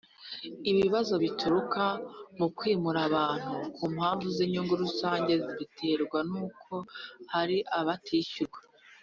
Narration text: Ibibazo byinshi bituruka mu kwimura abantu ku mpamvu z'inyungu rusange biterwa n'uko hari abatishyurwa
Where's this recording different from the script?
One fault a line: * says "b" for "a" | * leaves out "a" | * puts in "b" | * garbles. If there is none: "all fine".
* leaves out "byinshi"